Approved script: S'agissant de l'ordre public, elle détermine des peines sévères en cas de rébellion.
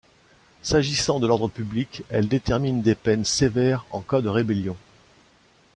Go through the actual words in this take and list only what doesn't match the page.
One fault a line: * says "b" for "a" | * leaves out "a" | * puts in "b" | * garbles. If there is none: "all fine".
all fine